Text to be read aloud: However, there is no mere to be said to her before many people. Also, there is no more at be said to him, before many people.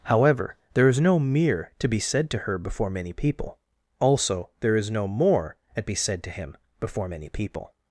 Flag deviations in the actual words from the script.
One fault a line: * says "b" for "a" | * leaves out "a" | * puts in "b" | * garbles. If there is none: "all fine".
all fine